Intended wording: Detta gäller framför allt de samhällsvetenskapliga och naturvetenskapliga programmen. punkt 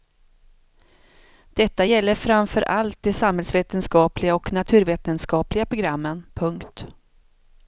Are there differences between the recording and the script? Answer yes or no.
no